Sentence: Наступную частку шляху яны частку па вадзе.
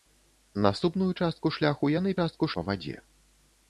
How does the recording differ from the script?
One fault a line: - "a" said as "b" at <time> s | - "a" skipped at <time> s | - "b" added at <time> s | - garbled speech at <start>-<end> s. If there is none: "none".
none